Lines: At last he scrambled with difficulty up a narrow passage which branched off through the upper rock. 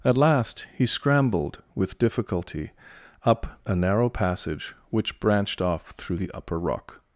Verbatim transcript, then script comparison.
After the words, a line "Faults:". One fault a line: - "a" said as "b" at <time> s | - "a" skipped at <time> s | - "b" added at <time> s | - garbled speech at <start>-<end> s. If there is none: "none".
At last he scrambled with difficulty up a narrow passage which branched off through the upper rock.
Faults:
none